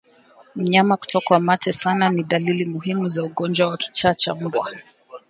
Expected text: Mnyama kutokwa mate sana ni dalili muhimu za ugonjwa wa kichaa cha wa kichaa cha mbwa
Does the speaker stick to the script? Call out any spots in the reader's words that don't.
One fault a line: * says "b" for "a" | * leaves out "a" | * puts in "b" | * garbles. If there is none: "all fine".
* leaves out "wa kichaa cha"